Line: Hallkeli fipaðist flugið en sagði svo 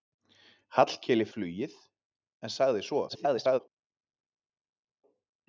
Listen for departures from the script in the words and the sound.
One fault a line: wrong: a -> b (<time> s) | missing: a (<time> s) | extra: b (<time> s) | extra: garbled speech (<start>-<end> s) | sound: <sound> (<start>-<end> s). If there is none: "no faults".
missing: fipaðist (1.3 s)
extra: garbled speech (3.1-3.6 s)